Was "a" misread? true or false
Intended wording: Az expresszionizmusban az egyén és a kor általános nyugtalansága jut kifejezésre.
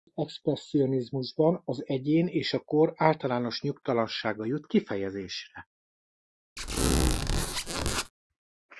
false